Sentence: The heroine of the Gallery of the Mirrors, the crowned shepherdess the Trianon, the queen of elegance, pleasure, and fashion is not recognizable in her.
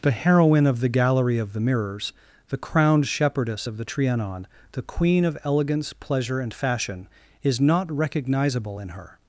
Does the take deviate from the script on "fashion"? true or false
false